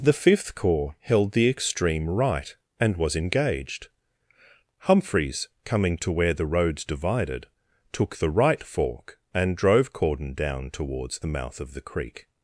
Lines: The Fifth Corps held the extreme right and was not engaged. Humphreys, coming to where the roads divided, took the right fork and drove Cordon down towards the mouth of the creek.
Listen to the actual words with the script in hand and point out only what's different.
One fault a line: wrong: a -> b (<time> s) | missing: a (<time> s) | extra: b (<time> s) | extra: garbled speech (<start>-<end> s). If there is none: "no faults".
missing: not (3.1 s)